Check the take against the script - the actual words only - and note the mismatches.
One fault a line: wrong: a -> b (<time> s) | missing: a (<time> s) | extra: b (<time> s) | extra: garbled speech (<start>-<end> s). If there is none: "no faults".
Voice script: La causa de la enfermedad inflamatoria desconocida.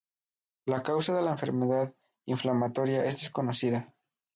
extra: es (3.0 s)